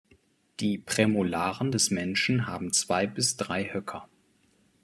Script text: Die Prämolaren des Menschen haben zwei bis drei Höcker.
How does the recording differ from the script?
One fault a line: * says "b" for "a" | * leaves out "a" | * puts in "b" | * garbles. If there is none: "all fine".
all fine